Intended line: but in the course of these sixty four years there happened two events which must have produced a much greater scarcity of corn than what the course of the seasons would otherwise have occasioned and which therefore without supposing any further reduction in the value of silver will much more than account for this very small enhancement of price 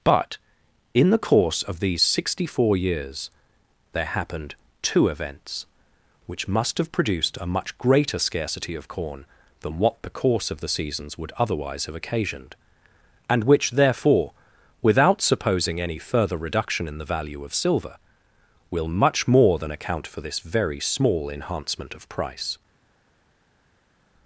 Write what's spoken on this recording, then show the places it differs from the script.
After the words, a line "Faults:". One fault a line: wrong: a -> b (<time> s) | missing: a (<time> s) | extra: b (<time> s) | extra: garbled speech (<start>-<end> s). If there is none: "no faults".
but in the course of these sixty four years there happened two events which must have produced a much greater scarcity of corn than what the course of the seasons would otherwise have occasioned and which therefore without supposing any further reduction in the value of silver will much more than account for this very small enhancement of price
Faults:
no faults